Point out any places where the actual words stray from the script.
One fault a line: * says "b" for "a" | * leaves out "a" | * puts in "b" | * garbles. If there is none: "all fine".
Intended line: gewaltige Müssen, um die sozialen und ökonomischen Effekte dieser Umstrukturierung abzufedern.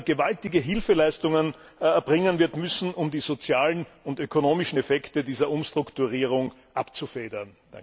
* puts in "Hilfeleistungen erbringen wird"